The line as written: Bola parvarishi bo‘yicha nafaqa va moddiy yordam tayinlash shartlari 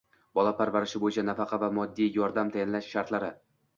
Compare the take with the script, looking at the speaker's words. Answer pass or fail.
pass